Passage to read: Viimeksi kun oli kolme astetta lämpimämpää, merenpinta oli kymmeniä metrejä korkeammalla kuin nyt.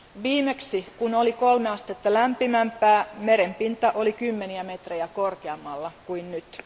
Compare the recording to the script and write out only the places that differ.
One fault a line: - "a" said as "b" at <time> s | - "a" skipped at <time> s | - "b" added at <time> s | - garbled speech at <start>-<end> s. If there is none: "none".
none